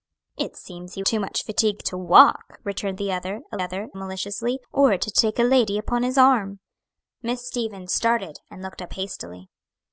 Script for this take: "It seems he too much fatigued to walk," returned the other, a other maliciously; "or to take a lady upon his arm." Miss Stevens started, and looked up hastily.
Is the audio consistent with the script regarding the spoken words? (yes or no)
yes